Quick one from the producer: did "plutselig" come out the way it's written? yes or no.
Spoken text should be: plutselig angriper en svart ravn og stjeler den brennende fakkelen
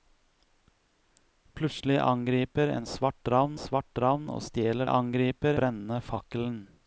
yes